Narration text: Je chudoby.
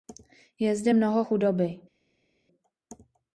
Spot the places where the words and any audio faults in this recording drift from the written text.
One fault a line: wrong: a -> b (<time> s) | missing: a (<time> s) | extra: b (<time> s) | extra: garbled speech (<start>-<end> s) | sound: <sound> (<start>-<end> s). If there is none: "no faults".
extra: zde mnoho (0.8 s)